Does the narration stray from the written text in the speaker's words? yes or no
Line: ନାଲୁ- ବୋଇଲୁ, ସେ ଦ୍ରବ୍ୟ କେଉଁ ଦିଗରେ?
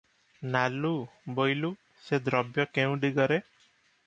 no